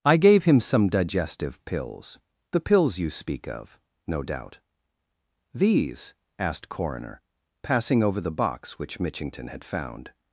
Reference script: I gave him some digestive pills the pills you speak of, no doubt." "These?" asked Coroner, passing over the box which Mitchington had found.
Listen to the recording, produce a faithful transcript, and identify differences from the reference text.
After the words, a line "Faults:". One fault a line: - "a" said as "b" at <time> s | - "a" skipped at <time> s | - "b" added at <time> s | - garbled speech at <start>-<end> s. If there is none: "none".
I gave him some digestive pills the pills you speak of, no doubt." "These?" asked Coroner, passing over the box which Mitchington had found.
Faults:
none